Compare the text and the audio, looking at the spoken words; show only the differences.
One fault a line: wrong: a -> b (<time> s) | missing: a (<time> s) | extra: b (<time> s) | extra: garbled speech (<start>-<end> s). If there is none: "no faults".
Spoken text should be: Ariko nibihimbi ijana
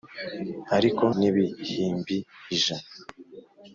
no faults